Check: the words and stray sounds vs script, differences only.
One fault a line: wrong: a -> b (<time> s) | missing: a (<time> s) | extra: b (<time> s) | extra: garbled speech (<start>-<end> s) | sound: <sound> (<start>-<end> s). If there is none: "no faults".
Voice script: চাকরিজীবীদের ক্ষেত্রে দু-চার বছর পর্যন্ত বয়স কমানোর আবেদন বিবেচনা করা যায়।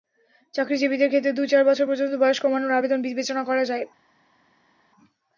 no faults